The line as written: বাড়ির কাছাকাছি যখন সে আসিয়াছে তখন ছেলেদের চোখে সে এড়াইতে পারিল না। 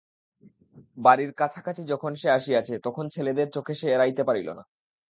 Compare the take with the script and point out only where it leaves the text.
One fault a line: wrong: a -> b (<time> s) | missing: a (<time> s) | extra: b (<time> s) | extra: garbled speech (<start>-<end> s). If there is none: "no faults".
no faults